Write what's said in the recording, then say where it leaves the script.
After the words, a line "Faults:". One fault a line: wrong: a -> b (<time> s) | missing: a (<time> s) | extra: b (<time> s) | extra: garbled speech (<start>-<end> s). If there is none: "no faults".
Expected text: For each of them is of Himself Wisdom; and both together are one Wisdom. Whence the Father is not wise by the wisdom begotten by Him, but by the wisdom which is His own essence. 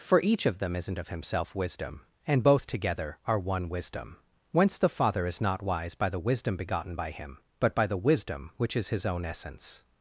For each of them isn't of Himself Wisdom; and both together are one Wisdom. Whence the Father is not wise by the wisdom begotten by Him, but by the wisdom which is His own essence.
Faults:
wrong: is -> isn't (0.8 s)